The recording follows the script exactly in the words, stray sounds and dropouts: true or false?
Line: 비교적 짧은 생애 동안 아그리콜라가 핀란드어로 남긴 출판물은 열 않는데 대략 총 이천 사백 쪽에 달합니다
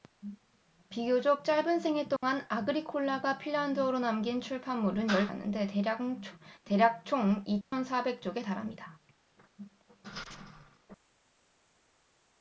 false